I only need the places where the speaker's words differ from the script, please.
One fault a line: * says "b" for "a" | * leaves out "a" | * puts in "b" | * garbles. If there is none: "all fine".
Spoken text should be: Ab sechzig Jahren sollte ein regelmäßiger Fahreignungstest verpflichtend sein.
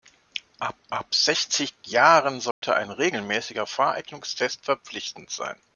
* puts in "ab"